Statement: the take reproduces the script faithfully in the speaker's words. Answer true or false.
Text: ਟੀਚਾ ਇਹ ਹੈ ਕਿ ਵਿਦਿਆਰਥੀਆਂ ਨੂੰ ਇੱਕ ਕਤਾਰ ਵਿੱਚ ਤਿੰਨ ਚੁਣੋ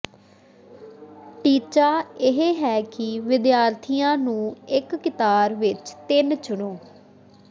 true